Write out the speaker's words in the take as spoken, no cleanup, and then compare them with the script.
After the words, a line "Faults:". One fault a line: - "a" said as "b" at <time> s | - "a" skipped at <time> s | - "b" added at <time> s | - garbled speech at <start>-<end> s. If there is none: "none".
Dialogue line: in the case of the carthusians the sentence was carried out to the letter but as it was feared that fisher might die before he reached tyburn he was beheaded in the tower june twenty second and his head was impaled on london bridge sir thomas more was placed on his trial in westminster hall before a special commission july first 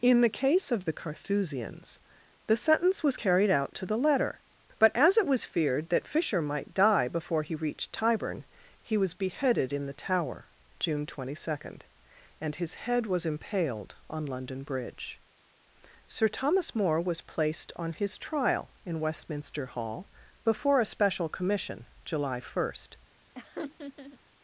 in the case of the carthusians the sentence was carried out to the letter but as it was feared that fisher might die before he reached tyburn he was beheaded in the tower june twenty second and his head was impaled on london bridge sir thomas more was placed on his trial in westminster hall before a special commission july first
Faults:
none